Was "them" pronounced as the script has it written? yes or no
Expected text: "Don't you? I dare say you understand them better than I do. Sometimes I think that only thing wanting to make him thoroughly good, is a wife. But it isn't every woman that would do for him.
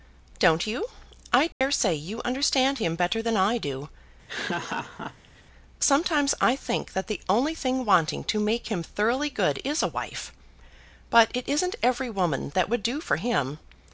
no